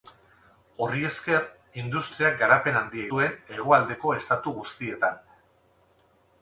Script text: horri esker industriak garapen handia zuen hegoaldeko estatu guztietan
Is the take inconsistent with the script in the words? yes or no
no